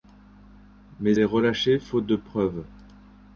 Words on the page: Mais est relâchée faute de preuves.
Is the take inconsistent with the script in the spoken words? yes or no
no